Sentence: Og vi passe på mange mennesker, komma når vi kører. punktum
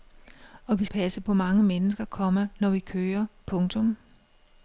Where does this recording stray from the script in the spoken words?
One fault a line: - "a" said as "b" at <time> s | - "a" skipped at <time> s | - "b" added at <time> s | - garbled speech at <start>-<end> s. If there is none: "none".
none